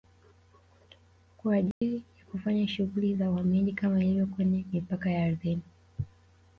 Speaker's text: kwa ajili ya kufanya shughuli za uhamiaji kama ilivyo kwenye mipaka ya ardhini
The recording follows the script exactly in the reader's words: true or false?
true